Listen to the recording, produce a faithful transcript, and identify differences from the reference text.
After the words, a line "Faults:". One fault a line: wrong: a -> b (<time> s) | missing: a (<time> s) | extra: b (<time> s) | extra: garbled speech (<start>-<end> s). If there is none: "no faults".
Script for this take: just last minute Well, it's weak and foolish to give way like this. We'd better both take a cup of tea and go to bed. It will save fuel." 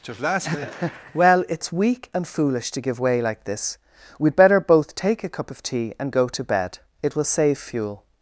just last minute Well, it's weak and foolish to give way like this. We'd better both take a cup of tea and go to bed. It will save fuel."
Faults:
no faults